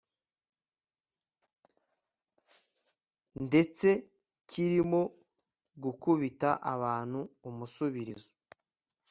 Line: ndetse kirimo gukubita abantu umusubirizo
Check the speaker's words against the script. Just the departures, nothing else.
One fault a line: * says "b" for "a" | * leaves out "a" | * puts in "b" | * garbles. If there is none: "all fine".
all fine